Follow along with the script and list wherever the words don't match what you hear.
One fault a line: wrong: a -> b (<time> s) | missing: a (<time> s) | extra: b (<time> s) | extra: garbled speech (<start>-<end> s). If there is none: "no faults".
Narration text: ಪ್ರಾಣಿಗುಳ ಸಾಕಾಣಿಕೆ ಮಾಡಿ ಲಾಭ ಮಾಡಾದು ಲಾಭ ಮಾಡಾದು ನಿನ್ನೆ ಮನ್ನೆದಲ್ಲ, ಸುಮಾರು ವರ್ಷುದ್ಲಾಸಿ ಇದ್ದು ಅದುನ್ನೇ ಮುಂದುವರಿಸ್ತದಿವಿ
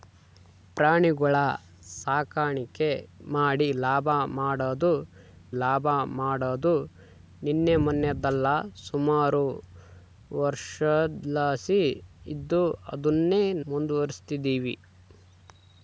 no faults